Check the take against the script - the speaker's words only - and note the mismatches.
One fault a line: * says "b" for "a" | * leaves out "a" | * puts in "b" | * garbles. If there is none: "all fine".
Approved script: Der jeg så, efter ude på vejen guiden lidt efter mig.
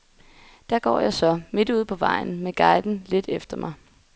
* puts in "går"
* says "midt" for "efter"
* puts in "med"